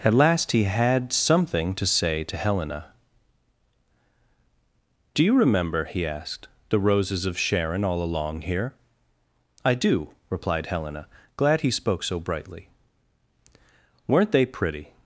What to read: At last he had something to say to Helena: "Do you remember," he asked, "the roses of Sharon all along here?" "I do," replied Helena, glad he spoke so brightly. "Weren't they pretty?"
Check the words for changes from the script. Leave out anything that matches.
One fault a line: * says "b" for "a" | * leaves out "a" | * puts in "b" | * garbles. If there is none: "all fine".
all fine